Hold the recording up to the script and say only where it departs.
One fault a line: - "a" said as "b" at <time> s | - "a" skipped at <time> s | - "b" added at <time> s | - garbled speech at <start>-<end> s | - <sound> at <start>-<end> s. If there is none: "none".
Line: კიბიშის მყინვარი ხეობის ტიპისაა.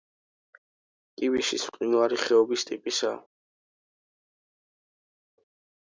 none